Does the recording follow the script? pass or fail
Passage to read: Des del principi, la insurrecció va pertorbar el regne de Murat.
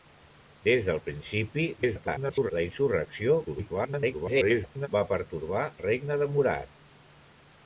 fail